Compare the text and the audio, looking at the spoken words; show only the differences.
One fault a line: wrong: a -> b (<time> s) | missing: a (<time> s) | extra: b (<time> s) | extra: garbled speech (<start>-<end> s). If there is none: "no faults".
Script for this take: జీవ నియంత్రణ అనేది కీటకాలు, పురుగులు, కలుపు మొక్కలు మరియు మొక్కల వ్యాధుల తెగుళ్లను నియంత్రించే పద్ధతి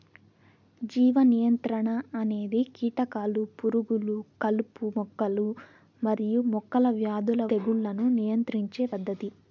no faults